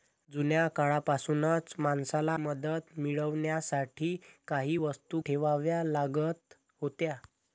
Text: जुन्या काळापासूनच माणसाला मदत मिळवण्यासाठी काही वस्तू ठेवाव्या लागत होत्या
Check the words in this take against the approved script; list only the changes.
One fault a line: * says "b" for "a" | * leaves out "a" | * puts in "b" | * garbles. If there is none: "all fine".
all fine